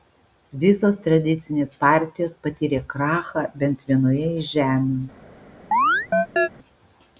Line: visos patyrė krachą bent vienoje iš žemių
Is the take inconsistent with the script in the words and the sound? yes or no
yes